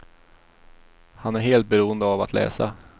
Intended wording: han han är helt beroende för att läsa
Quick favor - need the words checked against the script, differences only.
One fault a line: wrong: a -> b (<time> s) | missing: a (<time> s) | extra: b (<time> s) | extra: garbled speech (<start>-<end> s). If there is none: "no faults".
missing: han (1.4 s)
wrong: för -> av (2.0 s)